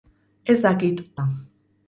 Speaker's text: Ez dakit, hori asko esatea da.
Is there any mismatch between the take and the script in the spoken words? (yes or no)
yes